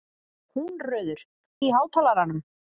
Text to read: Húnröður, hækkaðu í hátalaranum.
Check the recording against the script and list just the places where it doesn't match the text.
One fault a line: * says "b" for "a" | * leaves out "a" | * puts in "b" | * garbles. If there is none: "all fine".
* leaves out "hækkaðu"